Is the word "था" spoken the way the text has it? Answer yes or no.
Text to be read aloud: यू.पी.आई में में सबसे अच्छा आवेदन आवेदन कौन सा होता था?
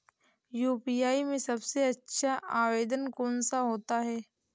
no